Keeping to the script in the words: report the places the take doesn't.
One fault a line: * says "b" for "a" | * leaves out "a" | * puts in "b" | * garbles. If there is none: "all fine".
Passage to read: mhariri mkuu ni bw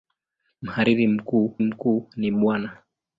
* puts in "mkuu"